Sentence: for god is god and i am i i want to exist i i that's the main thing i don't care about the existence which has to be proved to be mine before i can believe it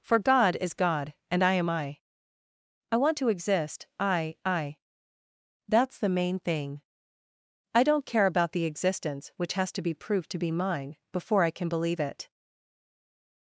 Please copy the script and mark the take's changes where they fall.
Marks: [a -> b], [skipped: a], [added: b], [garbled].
for god is god and i am i i want to exist i i that's the main thing i don't care about the existence which has to be proved to be mine before i can believe it